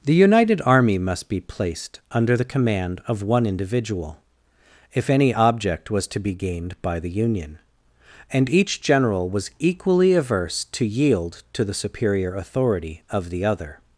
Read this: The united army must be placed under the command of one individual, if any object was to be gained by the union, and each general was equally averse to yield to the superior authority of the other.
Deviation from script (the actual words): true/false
false